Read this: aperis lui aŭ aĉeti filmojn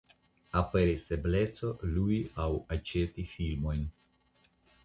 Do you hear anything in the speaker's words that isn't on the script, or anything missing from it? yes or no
yes